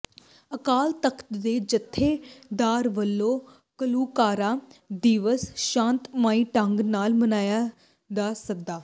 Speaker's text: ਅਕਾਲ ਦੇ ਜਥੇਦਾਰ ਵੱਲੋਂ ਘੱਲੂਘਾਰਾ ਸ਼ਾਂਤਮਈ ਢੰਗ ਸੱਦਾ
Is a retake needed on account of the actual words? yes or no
yes